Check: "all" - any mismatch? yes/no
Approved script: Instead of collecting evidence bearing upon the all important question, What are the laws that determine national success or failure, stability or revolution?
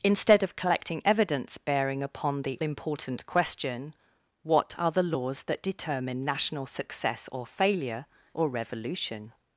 yes